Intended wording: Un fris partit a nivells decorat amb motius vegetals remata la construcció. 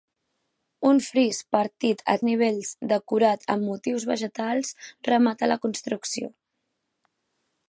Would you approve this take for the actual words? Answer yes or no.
yes